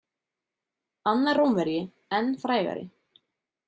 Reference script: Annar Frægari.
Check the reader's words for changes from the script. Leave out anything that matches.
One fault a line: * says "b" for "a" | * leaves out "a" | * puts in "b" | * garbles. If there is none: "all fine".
* puts in "Rómverji enn"